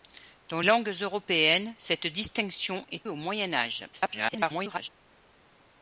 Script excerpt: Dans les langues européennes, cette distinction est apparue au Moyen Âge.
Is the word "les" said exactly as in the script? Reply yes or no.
no